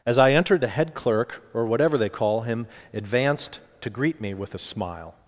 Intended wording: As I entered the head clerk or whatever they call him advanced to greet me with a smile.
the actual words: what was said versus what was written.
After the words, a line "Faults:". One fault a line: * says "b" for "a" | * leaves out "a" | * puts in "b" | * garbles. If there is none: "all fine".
As I entered the head clerk or whatever they call him advanced to greet me with a smile.
Faults:
all fine